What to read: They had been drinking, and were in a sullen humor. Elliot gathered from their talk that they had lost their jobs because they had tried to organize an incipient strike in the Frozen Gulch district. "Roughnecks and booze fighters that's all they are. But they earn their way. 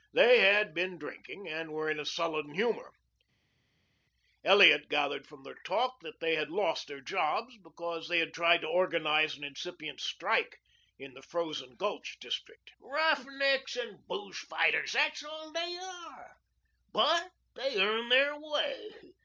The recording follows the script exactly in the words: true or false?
true